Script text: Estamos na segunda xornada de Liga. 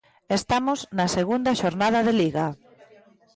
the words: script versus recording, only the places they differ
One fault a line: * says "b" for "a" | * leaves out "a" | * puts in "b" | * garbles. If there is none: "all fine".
all fine